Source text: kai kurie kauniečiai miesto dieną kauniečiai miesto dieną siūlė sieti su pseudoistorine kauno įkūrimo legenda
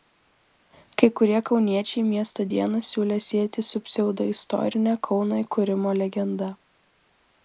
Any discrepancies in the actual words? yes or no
yes